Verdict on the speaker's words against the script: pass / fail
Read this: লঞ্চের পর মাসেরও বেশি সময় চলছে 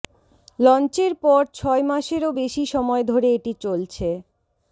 fail